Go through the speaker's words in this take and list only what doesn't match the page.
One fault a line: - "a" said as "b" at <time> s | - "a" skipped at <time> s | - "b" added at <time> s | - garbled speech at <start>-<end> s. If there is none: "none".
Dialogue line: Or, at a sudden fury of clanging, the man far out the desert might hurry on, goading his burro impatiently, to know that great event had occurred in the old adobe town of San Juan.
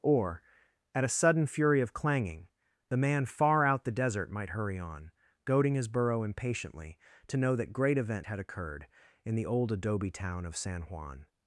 none